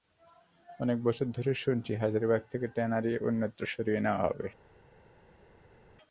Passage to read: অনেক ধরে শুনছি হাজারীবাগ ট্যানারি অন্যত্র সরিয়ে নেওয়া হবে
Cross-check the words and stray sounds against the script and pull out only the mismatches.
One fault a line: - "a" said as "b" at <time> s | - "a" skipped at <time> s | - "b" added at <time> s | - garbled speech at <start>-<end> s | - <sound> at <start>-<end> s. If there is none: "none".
- "বছর" added at 1.0 s
- "থেকে" added at 2.5 s